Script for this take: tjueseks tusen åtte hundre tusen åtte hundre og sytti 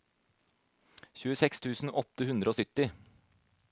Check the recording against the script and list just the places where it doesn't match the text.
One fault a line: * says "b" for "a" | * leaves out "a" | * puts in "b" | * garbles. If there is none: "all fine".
* leaves out "tusen åtte hundre"